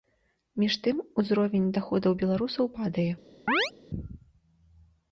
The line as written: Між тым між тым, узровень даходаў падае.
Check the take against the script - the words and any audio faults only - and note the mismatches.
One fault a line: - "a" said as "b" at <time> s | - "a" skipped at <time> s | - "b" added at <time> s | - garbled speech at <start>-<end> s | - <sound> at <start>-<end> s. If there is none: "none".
- "між тым" skipped at 1.0 s
- "беларусаў" added at 2.2 s
- chirp at 3.5-3.7 s